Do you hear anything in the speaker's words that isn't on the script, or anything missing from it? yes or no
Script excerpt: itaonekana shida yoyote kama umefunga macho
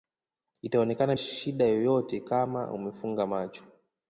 no